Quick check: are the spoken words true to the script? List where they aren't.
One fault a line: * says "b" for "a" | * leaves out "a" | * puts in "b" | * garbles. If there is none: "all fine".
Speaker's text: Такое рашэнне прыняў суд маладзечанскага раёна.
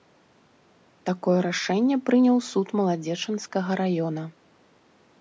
all fine